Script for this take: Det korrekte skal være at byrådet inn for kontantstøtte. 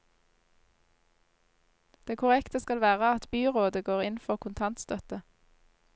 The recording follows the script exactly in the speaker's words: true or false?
false